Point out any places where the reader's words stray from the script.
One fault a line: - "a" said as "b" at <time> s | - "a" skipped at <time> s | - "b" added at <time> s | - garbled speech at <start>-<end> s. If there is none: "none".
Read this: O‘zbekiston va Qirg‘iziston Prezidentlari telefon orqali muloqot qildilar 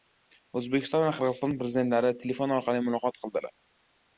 none